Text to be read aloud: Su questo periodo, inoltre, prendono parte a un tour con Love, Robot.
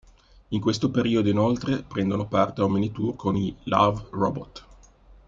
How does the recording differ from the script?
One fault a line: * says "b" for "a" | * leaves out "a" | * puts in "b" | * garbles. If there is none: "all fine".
* says "In" for "Su"
* puts in "mini"
* puts in "i"